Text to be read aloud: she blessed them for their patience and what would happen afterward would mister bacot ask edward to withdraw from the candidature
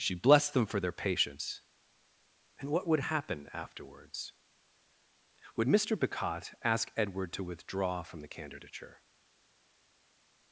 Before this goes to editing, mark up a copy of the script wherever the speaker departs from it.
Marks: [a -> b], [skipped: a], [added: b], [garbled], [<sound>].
she blessed them for their patience and what would happen [afterward -> afterwards] would mister bacot ask edward to withdraw from the candidature